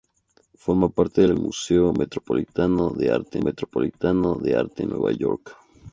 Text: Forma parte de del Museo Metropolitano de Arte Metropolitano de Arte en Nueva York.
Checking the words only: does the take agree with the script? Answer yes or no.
yes